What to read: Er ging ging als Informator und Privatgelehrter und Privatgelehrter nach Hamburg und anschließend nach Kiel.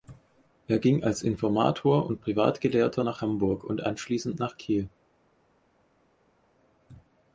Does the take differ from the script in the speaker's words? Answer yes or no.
yes